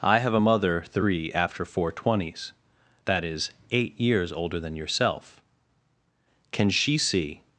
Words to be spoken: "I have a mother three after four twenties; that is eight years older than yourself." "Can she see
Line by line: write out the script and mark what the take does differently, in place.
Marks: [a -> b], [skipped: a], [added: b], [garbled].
"I have a mother three after four twenties; that is eight years older than yourself." "Can she see